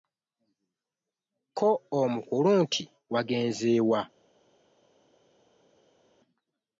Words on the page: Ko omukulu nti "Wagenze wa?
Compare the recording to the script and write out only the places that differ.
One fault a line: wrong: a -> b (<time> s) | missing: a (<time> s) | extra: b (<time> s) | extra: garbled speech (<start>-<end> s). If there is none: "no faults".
no faults